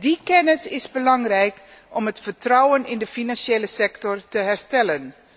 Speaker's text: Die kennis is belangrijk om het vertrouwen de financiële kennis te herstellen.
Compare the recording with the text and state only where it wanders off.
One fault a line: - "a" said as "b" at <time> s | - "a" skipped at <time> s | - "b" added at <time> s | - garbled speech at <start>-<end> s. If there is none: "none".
- "in" added at 2.9 s
- "kennis" said as "sector" at 3.7 s